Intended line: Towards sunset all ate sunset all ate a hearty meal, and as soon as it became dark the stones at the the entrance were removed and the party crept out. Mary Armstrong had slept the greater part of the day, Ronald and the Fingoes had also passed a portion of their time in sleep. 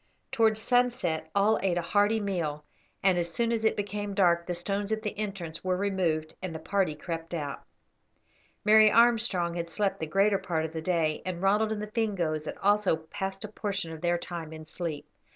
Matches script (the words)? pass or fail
fail